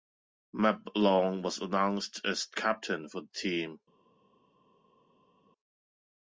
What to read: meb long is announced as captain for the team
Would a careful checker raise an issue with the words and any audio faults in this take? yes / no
yes